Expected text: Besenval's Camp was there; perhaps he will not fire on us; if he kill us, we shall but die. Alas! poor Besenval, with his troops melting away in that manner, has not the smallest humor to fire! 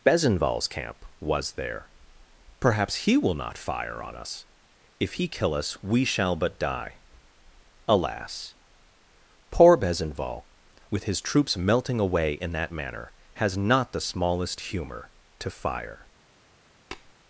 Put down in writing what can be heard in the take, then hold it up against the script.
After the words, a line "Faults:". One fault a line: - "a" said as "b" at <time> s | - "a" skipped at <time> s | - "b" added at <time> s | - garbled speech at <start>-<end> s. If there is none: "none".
Besenval's Camp was there; perhaps he will not fire on us; if he kill us, we shall but die. Alas! poor Besenval, with his troops melting away in that manner, has not the smallest humor to fire!
Faults:
none